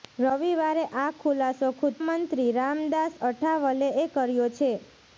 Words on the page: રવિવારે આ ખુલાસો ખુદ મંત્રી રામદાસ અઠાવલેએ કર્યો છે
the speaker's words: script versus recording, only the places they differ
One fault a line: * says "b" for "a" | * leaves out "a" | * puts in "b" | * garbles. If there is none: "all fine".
all fine